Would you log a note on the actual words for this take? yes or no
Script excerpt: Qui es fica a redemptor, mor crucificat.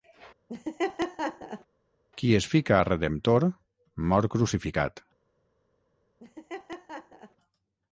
no